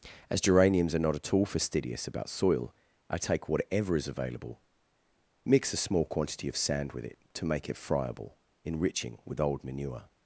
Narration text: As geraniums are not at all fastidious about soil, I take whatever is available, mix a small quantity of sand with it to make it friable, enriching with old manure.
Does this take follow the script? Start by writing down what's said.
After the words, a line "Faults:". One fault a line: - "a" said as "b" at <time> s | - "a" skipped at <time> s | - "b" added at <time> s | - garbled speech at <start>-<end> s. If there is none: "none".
As geraniums are not at all fastidious about soil, I take whatever is available, mix a small quantity of sand with it to make it friable, enriching with old manure.
Faults:
none